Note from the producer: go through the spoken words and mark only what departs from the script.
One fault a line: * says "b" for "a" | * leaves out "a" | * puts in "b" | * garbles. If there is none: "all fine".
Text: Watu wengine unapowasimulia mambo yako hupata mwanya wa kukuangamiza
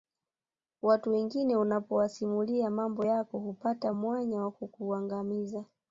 all fine